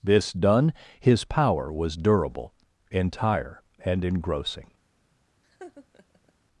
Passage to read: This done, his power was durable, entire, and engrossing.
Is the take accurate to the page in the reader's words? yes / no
yes